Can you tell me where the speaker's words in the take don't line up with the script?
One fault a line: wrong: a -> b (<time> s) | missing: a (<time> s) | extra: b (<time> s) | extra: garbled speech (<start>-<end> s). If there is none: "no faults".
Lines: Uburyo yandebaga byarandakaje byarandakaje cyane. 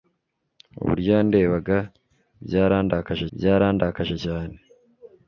no faults